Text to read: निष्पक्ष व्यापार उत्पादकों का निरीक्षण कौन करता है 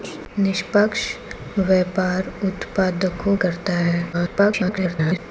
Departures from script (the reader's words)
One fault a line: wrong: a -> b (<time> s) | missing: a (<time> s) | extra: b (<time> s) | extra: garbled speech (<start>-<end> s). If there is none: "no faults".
missing: का निरीक्षण कौन (3.4 s)
extra: garbled speech (4.1-5.2 s)